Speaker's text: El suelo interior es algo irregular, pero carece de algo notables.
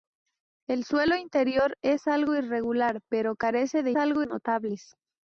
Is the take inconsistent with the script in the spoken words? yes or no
no